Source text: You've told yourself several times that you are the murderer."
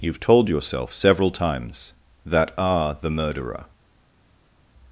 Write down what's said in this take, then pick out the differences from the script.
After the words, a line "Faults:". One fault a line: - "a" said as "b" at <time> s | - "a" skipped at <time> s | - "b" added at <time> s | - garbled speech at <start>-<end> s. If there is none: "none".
You've told yourself several times that are the murderer."
Faults:
- "you" skipped at 2.5 s